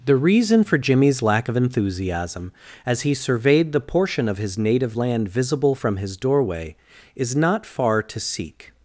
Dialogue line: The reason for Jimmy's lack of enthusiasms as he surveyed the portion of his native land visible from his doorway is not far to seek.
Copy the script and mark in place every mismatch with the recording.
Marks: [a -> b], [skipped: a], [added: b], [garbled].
The reason for Jimmy's lack of [enthusiasms -> enthusiasm] as he surveyed the portion of his native land visible from his doorway is not far to seek.